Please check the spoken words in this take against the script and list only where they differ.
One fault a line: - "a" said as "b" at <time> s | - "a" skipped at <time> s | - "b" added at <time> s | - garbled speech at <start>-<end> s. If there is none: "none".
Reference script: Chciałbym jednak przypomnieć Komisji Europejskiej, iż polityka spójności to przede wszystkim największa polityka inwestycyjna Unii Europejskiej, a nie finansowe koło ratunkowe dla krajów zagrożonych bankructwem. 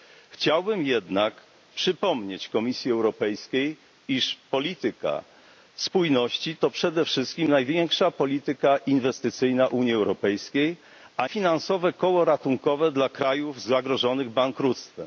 - "nie" skipped at 11.3 s